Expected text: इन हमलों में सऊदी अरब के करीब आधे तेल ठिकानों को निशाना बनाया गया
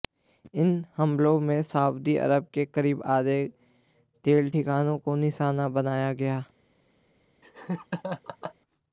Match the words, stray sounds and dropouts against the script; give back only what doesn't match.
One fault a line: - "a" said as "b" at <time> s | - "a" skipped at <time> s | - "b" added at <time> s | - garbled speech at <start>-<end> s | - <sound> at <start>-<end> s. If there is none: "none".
- laugh at 7.4-8.6 s